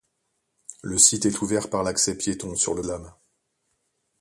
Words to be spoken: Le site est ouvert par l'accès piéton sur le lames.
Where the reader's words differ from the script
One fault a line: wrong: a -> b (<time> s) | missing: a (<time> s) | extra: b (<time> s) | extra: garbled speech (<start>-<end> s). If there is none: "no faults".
no faults